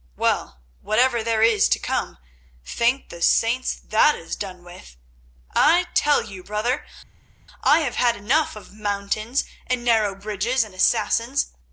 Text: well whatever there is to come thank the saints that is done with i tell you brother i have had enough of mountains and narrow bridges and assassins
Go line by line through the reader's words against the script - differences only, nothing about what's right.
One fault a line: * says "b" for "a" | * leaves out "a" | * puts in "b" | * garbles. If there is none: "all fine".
all fine